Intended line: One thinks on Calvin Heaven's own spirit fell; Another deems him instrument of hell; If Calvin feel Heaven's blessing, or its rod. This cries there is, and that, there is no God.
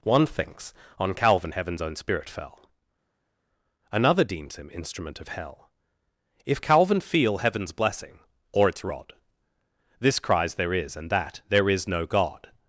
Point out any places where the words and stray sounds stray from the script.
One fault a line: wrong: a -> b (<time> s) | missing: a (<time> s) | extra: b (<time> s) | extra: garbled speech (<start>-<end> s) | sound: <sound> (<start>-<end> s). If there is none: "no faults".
no faults